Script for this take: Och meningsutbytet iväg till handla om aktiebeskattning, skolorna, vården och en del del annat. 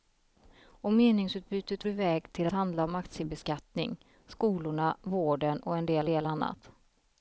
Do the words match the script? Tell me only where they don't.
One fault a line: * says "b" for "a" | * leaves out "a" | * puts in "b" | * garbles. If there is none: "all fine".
all fine